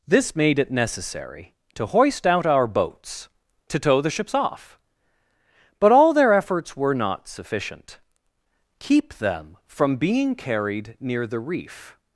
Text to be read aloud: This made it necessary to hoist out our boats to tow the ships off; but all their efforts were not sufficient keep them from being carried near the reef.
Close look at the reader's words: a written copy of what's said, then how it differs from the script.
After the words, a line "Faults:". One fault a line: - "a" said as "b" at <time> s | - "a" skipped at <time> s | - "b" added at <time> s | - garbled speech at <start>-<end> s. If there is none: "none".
This made it necessary to hoist out our boats to tow the ships off; but all their efforts were not sufficient keep them from being carried near the reef.
Faults:
none